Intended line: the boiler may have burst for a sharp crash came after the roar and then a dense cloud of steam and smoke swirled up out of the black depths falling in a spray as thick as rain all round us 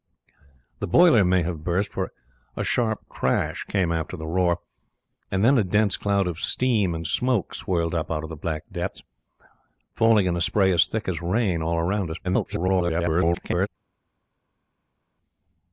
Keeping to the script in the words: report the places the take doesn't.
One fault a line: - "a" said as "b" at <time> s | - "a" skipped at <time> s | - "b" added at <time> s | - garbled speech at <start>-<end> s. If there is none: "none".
- garbled speech at 12.2-13.7 s